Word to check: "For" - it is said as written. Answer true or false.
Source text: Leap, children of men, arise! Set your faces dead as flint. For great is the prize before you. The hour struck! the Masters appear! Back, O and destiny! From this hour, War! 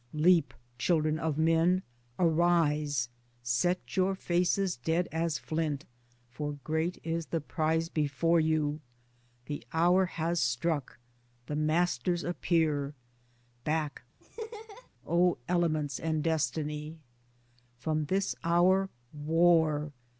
true